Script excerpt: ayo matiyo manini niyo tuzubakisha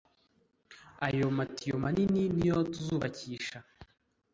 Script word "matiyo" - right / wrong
right